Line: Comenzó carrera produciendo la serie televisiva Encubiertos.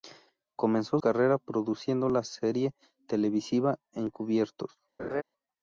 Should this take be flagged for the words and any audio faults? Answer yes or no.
yes